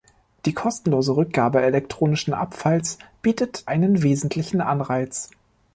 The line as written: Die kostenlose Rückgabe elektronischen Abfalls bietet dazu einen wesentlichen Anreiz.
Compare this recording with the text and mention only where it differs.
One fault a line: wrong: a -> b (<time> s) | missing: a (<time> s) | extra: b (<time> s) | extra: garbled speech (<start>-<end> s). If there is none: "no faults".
missing: dazu (3.7 s)